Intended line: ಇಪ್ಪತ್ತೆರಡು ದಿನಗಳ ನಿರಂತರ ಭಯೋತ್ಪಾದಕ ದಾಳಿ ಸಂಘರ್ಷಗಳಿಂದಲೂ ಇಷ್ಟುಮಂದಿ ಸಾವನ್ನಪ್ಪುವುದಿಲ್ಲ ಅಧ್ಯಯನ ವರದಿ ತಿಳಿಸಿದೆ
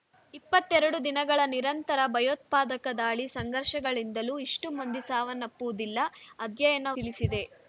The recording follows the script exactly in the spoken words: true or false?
false